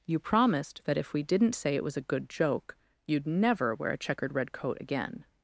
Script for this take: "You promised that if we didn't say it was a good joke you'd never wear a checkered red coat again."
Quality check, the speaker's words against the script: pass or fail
pass